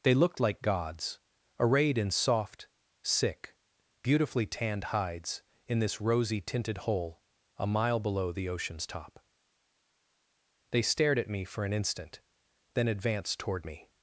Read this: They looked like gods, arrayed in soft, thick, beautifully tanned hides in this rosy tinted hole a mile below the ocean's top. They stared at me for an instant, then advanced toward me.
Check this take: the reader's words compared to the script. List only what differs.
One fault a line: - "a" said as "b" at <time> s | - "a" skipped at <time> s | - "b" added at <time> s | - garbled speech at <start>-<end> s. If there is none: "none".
- "thick" said as "sick" at 3.0 s